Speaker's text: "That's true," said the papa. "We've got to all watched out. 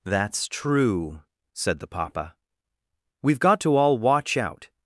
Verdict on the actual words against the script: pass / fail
fail